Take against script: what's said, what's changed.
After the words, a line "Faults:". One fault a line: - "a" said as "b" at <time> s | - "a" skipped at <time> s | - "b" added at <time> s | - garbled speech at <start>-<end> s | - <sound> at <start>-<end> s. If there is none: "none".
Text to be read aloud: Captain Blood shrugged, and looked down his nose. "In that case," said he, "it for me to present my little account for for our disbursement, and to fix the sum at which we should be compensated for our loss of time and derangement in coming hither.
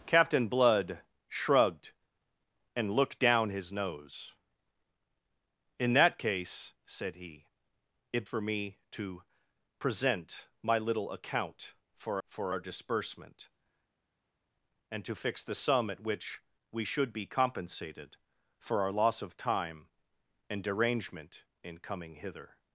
Captain Blood shrugged, and looked down his nose. "In that case," said he, "it for me to present my little account for for our disbursement, and to fix the sum at which we should be compensated for our loss of time and derangement in coming hither.
Faults:
none